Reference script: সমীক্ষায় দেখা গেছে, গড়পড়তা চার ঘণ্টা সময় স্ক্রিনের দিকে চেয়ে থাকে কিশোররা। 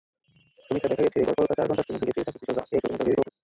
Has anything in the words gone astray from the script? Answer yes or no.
yes